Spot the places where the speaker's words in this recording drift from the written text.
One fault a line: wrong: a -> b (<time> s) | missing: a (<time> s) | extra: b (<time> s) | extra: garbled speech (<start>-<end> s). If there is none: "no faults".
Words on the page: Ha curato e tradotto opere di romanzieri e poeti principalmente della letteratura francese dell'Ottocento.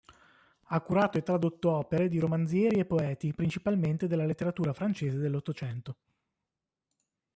no faults